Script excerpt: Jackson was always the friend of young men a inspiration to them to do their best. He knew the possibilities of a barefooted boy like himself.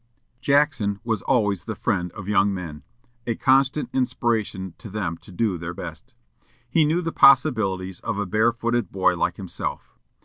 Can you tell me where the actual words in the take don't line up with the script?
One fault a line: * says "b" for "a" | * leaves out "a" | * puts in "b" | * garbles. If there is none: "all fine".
* puts in "constant"